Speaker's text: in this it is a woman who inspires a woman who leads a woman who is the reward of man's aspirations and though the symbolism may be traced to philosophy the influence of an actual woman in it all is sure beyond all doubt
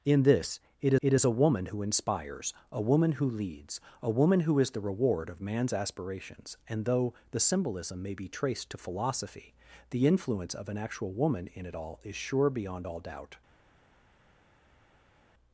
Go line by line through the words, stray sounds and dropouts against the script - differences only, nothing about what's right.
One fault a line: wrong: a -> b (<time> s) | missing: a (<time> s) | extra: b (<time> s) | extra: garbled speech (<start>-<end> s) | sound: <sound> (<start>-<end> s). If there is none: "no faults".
extra: it (1.0 s)